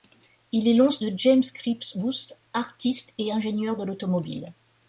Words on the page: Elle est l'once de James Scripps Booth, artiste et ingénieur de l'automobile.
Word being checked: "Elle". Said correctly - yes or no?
no